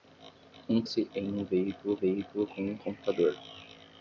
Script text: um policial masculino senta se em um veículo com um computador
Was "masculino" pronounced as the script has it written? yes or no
no